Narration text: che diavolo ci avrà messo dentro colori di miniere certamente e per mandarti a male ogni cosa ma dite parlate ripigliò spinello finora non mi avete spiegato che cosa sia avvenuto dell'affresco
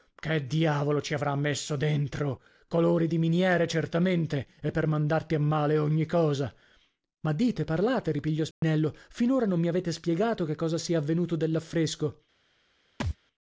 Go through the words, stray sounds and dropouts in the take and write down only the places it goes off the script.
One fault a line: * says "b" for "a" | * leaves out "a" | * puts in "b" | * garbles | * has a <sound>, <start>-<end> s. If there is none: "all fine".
* has a dropout, 8.5-8.6 s
* has a thud, 13.0-13.2 s